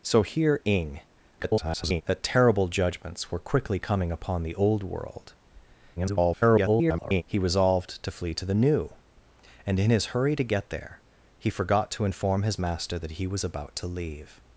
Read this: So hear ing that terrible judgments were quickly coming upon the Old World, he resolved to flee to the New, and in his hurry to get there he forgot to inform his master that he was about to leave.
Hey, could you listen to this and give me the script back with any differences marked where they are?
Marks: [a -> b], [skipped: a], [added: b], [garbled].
So hear ing [garbled] that terrible judgments were quickly coming upon the Old World, [garbled] he resolved to flee to the New, and in his hurry to get there he forgot to inform his master that he was about to leave.